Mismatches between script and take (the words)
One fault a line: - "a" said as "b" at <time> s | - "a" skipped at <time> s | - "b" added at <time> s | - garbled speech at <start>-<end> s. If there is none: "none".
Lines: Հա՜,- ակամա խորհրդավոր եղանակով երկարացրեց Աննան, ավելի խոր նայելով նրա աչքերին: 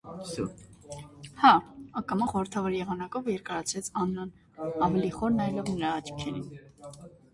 none